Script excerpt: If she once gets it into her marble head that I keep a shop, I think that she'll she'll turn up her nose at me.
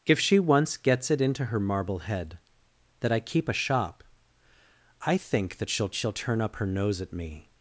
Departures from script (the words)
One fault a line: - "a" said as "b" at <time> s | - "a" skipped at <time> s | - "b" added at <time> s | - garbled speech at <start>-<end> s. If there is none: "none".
none